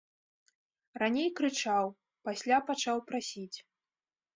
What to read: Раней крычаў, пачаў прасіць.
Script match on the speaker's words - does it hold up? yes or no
no